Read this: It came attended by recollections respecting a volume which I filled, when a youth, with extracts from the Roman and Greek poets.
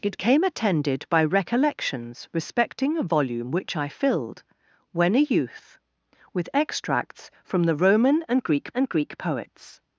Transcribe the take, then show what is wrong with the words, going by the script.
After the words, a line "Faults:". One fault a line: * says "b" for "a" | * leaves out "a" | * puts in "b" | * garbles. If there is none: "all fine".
It came attended by recollections respecting a volume which I filled, when a youth, with extracts from the Roman and Greek and Greek poets.
Faults:
* puts in "and Greek"